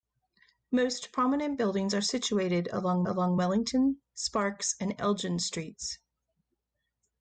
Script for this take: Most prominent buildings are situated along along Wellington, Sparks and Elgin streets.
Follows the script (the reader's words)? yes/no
yes